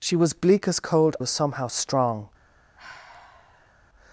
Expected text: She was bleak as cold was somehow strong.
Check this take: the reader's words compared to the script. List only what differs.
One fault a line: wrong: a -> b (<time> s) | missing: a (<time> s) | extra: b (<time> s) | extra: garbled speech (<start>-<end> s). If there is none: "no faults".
no faults